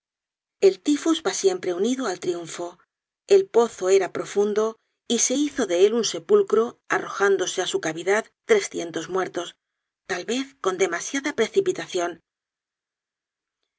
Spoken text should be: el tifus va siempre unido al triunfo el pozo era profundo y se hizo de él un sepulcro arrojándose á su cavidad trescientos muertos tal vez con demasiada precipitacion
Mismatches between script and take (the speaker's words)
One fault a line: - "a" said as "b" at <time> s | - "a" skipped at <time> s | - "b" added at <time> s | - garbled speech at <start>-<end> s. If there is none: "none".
none